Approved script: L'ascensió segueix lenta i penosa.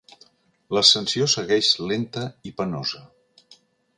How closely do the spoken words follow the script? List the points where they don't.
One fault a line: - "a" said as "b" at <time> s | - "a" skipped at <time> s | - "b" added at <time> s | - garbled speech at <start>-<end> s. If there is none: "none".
none